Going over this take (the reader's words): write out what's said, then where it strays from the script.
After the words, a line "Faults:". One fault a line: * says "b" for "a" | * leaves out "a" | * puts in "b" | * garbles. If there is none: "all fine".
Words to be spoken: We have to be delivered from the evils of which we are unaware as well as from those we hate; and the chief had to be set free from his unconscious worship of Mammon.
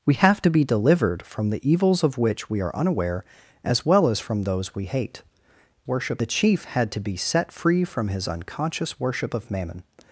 We have to be delivered from the evils of which we are unaware as well as from those we hate; worship the chief had to be set free from his unconscious worship of Mammon.
Faults:
* says "worship" for "and"